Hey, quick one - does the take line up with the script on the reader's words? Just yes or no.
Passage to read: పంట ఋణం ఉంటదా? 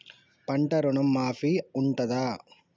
no